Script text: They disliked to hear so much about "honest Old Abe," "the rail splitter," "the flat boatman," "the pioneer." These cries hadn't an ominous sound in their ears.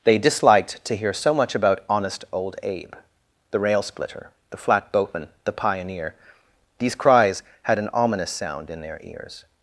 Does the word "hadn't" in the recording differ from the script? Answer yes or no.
yes